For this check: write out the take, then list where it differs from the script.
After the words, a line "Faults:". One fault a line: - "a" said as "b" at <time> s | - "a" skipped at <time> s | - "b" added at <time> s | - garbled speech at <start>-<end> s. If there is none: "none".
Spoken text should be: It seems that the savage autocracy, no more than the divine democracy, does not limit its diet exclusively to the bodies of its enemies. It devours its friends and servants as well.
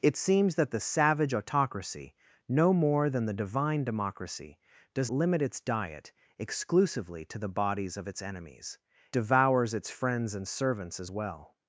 It seems that the savage autocracy, no more than the divine democracy, does limit its diet exclusively to the bodies of its enemies. Devours its friends and servants as well.
Faults:
- "not" skipped at 5.1 s
- "It" skipped at 8.8 s